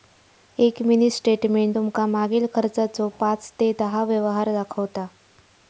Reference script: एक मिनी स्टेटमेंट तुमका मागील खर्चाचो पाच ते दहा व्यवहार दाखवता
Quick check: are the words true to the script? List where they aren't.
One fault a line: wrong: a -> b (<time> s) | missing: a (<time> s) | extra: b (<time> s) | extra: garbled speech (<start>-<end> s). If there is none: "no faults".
no faults